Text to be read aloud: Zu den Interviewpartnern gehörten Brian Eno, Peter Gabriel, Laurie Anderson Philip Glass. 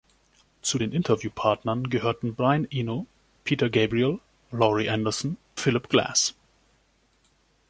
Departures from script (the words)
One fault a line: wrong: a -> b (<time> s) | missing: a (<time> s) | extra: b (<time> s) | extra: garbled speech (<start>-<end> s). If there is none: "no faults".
no faults